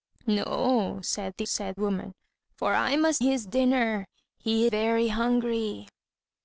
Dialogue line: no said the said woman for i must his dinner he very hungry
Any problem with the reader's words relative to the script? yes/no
no